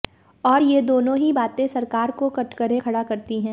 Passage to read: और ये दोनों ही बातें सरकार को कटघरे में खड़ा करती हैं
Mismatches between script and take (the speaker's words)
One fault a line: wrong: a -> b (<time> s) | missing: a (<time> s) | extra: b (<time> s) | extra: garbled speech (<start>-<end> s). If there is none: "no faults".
missing: में (2.8 s)